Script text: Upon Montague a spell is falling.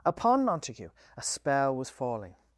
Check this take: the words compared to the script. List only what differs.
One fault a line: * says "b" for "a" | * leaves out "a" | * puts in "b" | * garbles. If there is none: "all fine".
* says "was" for "is"